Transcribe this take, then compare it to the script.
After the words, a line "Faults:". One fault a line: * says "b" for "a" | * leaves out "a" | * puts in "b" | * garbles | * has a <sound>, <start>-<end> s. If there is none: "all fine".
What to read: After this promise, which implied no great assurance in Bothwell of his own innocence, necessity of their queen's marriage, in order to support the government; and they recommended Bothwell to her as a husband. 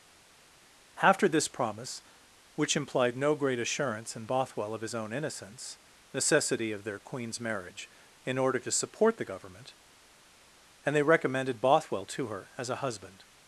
After this promise, which implied no great assurance in Bothwell of his own innocence, necessity of their queen's marriage, in order to support the government; and they recommended Bothwell to her as a husband.
Faults:
all fine